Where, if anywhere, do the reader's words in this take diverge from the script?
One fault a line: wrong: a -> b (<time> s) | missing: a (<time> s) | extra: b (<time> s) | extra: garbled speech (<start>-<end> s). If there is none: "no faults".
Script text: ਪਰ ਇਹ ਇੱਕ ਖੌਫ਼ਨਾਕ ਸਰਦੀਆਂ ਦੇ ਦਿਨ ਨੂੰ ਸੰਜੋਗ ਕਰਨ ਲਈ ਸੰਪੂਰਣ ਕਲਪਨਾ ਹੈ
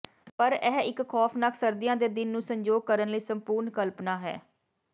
no faults